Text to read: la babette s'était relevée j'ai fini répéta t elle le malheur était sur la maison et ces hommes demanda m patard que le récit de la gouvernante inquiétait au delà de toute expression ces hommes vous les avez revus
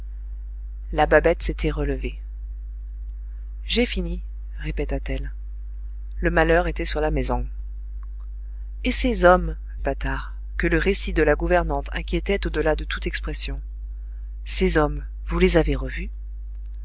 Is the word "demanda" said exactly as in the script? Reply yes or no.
no